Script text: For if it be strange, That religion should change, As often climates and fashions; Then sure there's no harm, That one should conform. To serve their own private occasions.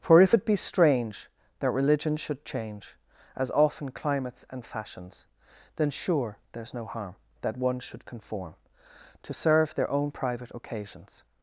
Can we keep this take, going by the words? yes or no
yes